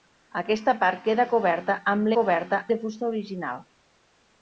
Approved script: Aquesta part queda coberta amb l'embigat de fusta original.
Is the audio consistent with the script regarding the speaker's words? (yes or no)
no